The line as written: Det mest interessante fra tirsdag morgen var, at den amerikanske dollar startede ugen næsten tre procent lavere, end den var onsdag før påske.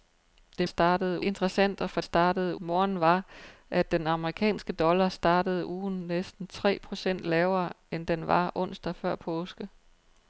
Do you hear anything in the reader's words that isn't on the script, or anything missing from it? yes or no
yes